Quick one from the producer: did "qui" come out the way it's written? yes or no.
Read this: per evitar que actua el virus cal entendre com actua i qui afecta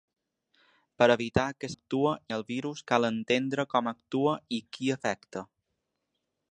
yes